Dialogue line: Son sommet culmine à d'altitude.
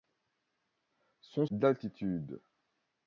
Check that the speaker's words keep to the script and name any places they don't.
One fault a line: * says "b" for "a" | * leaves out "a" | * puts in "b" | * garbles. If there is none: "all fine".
* leaves out "sommet culmine à"